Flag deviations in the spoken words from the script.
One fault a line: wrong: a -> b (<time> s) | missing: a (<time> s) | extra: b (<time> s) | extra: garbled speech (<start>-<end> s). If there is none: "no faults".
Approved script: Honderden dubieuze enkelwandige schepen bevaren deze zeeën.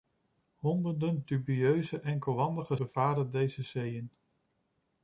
missing: schepen (2.8 s)